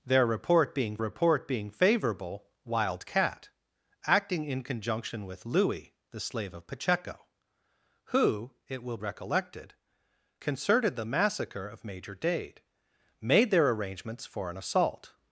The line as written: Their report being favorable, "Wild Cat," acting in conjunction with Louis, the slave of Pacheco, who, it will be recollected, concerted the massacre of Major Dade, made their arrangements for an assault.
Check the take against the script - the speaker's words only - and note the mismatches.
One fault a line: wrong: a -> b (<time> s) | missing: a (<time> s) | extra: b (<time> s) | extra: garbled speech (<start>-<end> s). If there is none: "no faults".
extra: report being (1.0 s)
missing: be (9.0 s)